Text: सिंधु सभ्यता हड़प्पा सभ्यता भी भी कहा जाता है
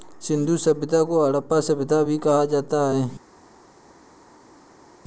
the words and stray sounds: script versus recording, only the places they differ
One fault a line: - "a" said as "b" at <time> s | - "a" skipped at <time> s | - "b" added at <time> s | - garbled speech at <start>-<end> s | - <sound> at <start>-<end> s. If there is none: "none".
- "को" added at 1.0 s
- "भी" skipped at 2.2 s